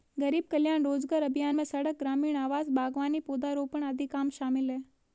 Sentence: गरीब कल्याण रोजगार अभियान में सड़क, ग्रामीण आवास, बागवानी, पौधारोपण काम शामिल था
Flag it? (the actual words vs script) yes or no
yes